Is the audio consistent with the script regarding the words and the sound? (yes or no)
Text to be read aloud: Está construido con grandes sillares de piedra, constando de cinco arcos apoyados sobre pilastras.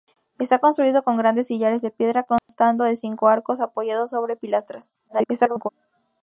no